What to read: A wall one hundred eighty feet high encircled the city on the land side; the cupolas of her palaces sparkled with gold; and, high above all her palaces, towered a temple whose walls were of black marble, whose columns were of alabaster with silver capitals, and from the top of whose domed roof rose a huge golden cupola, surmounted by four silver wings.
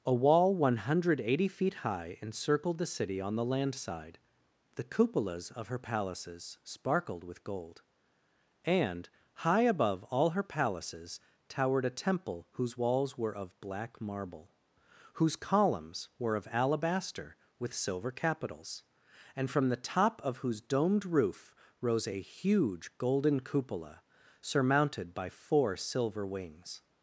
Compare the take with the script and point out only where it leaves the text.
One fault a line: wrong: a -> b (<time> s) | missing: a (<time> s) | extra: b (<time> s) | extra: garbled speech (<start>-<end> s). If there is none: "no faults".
no faults